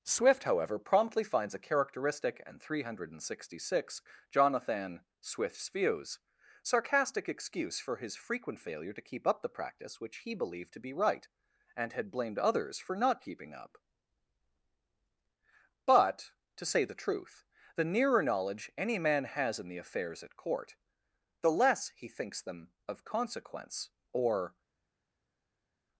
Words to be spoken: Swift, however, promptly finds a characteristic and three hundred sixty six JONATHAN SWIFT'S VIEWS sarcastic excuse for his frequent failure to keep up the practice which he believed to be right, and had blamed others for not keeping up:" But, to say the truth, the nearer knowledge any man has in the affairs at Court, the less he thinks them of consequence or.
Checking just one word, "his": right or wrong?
right